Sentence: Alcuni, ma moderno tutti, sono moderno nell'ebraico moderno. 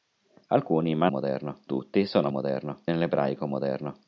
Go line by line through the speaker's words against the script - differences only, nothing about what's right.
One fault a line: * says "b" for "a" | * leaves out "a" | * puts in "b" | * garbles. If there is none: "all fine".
all fine